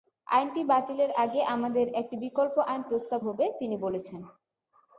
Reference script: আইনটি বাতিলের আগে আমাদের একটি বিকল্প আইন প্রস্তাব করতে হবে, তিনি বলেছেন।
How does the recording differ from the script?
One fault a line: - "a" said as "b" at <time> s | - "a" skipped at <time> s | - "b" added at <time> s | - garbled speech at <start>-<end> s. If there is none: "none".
- "করতে" skipped at 3.2 s